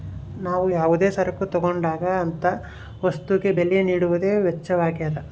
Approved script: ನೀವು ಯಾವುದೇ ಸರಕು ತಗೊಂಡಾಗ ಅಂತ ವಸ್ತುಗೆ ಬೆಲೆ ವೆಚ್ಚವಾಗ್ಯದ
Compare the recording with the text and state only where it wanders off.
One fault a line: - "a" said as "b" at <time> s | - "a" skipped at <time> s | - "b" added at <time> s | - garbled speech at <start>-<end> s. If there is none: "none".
- "ನೀವು" said as "ನಾವು" at 0.3 s
- "ನೀಡುವುದೇ" added at 3.8 s